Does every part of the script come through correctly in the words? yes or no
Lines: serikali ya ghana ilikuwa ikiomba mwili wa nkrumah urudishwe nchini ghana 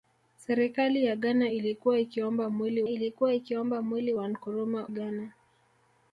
no